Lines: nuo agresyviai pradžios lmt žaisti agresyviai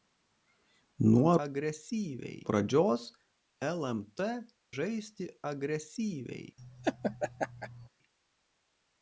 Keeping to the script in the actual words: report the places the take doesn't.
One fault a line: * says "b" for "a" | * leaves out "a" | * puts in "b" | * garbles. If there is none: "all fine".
all fine